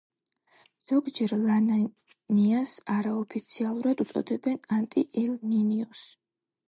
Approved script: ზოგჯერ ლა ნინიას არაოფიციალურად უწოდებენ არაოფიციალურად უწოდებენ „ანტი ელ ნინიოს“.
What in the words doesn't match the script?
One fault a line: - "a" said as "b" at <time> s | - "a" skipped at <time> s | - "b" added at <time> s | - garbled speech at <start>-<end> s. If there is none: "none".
- "არაოფიციალურად უწოდებენ" skipped at 4.6 s